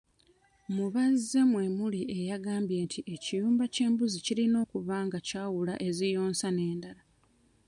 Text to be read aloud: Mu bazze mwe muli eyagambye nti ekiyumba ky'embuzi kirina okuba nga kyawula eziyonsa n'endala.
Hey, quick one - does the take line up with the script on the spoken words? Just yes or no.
yes